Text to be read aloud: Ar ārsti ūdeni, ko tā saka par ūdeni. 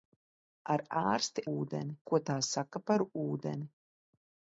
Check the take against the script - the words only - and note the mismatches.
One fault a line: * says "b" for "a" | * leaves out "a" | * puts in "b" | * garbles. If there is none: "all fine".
all fine